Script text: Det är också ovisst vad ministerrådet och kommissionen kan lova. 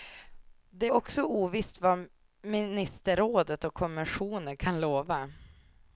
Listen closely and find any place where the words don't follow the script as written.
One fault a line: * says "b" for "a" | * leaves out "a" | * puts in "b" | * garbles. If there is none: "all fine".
all fine